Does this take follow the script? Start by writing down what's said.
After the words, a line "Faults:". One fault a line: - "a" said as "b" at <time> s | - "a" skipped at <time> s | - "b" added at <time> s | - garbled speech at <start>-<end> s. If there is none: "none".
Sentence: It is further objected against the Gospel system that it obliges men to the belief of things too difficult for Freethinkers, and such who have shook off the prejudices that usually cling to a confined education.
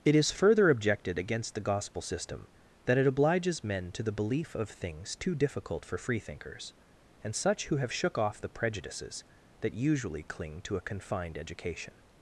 It is further objected against the Gospel system that it obliges men to the belief of things too difficult for Freethinkers, and such who have shook off the prejudices that usually cling to a confined education.
Faults:
none